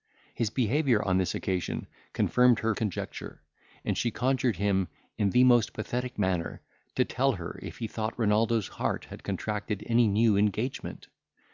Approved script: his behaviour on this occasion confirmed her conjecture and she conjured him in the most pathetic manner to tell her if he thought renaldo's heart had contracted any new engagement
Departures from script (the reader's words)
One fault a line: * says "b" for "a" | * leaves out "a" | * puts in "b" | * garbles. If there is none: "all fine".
all fine